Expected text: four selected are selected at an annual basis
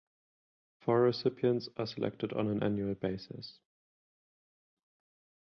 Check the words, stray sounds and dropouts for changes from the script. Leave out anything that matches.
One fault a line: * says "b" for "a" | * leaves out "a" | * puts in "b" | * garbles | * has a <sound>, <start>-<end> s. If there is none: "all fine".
* says "recipients" for "selected"
* says "on" for "at"